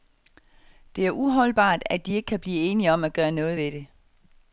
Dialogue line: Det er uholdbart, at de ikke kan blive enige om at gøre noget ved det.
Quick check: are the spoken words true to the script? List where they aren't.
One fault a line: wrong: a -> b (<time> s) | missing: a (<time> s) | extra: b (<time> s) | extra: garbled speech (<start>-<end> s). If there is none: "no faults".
no faults